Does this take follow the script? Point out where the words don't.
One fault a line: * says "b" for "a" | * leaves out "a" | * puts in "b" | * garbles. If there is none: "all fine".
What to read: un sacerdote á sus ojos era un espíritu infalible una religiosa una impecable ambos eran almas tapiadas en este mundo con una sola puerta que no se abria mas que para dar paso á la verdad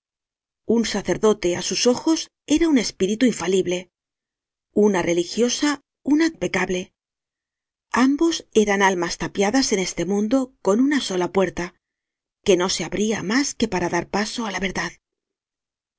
all fine